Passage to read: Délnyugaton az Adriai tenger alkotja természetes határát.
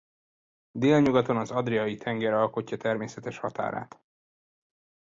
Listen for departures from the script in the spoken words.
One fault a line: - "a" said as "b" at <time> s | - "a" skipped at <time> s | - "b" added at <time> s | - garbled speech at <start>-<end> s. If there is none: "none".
none